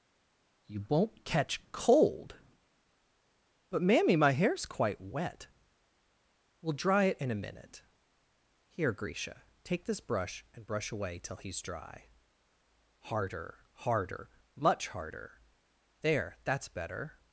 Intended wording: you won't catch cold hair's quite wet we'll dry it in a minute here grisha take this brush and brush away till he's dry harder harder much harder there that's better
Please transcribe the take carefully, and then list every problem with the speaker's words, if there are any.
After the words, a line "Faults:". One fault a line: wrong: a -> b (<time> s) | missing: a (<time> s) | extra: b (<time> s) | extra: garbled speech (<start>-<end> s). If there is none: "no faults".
you won't catch cold but mammy my hair's quite wet we'll dry it in a minute here grisha take this brush and brush away till he's dry harder harder much harder there that's better
Faults:
extra: but mammy my (3.7 s)